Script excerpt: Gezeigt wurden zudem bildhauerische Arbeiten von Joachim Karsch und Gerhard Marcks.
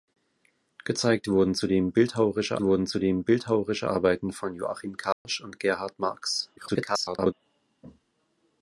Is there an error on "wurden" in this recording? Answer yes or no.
no